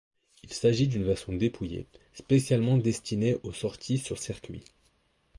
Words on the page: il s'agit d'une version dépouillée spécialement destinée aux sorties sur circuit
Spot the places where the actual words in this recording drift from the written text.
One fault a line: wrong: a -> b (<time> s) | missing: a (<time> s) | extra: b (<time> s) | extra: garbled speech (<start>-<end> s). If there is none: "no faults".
no faults